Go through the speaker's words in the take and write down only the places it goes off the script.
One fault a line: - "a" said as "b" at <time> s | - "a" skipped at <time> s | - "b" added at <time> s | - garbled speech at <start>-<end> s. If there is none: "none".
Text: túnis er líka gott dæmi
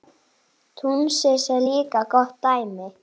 none